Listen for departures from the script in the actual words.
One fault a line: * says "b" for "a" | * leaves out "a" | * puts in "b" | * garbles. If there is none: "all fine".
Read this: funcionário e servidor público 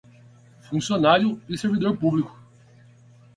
all fine